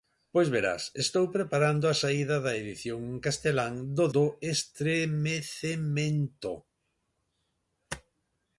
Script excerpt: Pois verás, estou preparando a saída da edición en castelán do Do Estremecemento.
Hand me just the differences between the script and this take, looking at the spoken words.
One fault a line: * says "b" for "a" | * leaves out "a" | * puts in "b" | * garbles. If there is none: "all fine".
all fine